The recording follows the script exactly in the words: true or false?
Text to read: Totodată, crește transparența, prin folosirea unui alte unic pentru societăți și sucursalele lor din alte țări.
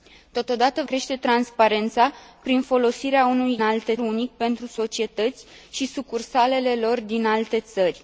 true